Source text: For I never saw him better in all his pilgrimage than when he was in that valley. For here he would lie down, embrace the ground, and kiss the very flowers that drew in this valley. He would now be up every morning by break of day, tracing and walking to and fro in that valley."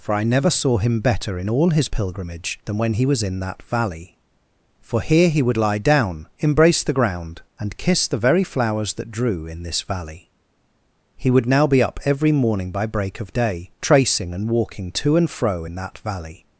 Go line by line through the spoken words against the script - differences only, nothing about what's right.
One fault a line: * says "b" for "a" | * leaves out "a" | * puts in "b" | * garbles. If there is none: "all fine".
all fine